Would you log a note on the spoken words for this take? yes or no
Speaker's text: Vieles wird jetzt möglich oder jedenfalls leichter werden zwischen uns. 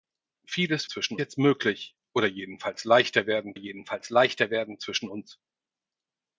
yes